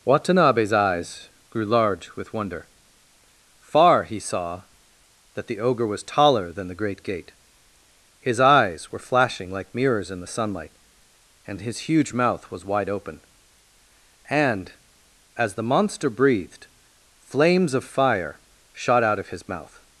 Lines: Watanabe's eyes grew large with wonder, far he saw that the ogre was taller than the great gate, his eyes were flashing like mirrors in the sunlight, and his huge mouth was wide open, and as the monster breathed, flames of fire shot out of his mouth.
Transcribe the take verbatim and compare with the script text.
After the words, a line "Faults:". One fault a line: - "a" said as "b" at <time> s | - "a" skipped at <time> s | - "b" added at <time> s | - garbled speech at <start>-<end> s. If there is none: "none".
Watanabe's eyes grew large with wonder, far he saw that the ogre was taller than the great gate, his eyes were flashing like mirrors in the sunlight, and his huge mouth was wide open, and as the monster breathed, flames of fire shot out of his mouth.
Faults:
none